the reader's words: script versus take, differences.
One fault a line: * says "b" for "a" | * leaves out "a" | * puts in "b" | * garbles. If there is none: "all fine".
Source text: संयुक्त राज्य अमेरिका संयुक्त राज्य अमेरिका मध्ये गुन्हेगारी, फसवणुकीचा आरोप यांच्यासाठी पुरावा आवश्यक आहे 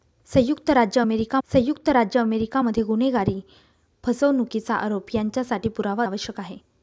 all fine